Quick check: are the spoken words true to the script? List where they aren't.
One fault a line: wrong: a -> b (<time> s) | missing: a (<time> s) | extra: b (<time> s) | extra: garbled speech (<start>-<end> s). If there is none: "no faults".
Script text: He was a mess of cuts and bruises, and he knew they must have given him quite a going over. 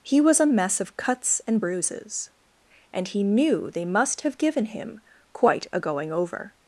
no faults